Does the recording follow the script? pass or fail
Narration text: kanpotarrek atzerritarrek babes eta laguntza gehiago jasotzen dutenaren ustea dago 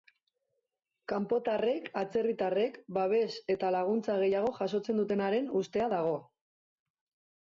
pass